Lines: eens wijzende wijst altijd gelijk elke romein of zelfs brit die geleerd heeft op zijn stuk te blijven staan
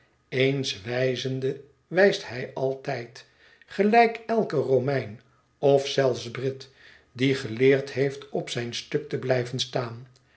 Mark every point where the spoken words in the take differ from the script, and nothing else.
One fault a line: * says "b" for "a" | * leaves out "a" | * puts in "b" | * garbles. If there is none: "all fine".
* puts in "hij"